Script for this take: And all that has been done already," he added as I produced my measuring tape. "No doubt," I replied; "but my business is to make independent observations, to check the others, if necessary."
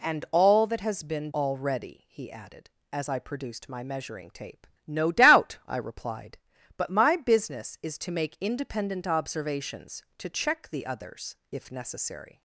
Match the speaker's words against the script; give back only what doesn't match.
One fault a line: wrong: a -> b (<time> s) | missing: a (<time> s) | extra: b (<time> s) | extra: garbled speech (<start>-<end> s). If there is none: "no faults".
missing: done (1.3 s)